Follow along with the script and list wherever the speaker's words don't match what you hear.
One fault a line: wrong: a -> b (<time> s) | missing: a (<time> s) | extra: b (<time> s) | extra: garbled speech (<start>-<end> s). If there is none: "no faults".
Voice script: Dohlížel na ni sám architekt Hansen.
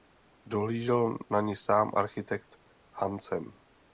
no faults